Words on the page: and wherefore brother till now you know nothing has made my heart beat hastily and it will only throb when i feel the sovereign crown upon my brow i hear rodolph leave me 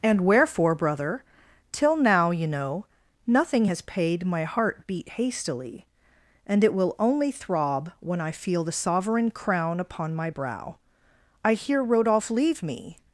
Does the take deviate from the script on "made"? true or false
true